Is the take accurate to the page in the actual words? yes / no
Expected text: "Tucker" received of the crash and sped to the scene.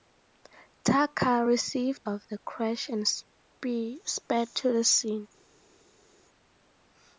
yes